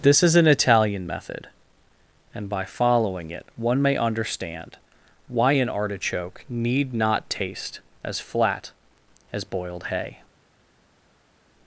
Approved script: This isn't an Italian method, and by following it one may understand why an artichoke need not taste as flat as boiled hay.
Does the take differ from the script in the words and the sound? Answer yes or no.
yes